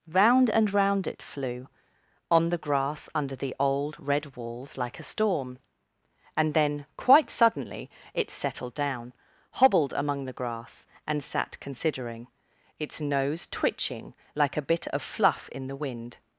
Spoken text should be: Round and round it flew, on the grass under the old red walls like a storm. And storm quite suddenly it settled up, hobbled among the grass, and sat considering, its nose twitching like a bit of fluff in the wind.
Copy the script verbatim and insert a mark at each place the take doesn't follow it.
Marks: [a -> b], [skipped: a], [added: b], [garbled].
Round and round it flew, on the grass under the old red walls like a storm. And [storm -> then] quite suddenly it settled [up, -> down] hobbled among the grass, and sat considering, its nose twitching like a bit of fluff in the wind.